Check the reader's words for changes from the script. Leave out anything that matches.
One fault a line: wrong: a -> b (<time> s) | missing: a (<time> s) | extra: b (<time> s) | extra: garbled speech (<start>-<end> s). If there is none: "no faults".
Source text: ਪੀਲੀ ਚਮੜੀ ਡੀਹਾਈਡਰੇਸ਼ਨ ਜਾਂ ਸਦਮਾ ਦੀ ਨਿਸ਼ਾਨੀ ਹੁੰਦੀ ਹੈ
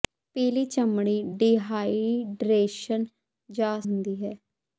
missing: ਸਦਮਾ ਦੀ ਨਿਸ਼ਾਨੀ (3.8 s)